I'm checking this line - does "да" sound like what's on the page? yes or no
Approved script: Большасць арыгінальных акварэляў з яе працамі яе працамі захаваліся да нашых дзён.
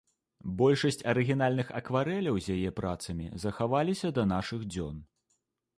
yes